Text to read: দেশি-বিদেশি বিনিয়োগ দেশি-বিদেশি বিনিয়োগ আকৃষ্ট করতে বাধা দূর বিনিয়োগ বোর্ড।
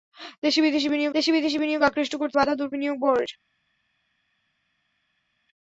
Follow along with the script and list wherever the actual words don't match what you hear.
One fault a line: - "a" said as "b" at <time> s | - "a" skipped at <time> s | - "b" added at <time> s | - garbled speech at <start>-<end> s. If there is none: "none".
none